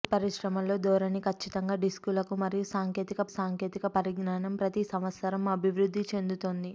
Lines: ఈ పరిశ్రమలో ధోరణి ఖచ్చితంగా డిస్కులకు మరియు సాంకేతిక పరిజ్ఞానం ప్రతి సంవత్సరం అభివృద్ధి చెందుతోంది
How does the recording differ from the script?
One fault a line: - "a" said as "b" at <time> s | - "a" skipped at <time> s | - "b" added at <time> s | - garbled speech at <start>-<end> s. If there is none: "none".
- "సాంకేతిక" added at 3.3 s